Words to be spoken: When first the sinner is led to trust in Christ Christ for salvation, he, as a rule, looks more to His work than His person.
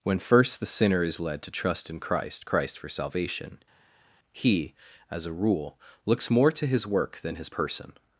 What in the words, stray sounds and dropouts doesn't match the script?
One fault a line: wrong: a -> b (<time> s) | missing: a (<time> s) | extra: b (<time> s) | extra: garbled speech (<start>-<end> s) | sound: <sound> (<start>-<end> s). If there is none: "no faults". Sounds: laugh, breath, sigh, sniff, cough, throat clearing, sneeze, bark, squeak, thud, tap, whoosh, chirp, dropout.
no faults